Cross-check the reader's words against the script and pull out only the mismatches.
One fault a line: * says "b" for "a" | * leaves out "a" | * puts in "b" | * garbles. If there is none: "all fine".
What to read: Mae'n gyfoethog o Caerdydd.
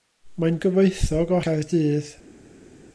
all fine